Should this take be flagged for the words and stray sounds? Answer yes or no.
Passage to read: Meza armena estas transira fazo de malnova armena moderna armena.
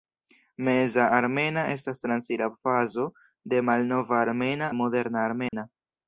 yes